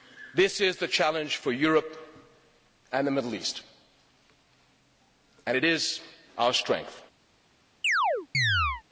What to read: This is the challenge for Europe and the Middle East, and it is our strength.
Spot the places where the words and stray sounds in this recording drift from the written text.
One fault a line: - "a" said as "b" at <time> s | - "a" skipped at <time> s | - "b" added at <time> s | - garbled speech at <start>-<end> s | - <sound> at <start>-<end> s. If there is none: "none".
- chirp at 7.8-8.8 s